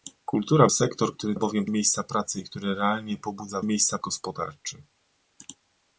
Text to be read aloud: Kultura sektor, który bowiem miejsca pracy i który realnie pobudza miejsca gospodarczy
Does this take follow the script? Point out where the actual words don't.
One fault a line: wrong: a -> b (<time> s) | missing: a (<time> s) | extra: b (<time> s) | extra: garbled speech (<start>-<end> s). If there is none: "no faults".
no faults